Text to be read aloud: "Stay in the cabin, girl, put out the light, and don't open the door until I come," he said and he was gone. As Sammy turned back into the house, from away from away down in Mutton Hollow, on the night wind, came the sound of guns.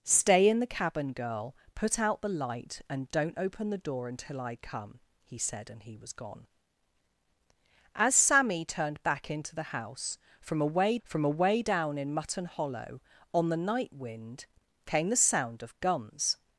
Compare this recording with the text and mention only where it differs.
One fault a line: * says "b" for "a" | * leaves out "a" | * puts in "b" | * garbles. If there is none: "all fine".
all fine